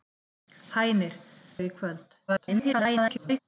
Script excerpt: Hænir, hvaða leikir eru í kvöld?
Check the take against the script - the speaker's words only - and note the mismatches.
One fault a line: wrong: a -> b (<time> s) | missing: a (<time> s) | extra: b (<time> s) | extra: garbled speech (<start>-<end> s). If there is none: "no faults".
missing: hvaða leikir (1.2 s)
extra: garbled speech (2.3-3.4 s)